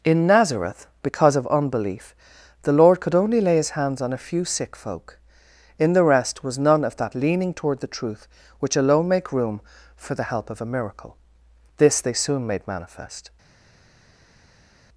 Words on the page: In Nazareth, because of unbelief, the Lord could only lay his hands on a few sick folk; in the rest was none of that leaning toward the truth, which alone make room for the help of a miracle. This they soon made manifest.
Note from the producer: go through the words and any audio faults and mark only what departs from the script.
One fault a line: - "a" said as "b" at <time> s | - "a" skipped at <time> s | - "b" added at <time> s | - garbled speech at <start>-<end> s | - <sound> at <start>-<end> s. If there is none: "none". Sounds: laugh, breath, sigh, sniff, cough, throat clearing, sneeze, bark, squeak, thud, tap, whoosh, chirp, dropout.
none